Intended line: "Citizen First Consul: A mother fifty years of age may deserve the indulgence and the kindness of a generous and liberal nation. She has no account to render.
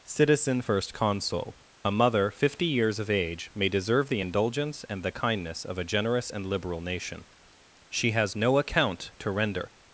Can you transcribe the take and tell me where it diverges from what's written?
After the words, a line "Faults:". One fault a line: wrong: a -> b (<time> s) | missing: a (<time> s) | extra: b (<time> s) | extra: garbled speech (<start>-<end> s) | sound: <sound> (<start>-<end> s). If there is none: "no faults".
"Citizen First Consul: A mother fifty years of age may deserve the indulgence and the kindness of a generous and liberal nation. She has no account to render.
Faults:
no faults